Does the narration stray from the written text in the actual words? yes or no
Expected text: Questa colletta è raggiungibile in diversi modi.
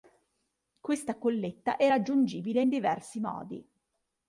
no